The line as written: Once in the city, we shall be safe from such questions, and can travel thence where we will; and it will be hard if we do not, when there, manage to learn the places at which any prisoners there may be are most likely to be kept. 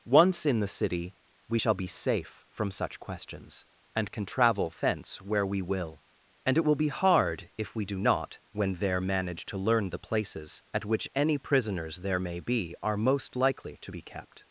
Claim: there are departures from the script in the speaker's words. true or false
false